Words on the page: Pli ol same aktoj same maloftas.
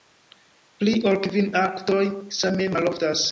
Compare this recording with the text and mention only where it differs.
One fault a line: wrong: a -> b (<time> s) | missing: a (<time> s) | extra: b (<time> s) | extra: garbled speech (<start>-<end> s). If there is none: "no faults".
wrong: same -> kvin (1.3 s)